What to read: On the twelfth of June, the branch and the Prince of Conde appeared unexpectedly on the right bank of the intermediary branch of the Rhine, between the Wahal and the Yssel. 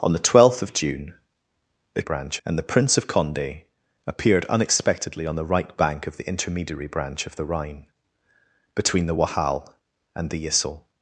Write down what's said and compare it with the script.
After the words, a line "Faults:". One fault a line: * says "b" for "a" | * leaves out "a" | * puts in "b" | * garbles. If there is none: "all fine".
On the twelfth of June, the branch and the Prince of Conde appeared unexpectedly on the right bank of the intermediary branch of the Rhine, between the Wahal and the Yssel.
Faults:
all fine